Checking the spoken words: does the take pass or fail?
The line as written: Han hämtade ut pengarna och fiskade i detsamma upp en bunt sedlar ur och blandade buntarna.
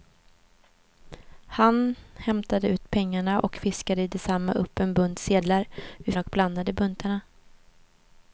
pass